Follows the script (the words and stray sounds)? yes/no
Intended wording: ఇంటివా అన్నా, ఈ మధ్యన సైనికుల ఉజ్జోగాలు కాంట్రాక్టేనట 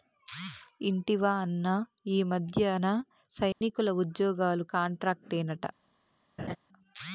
no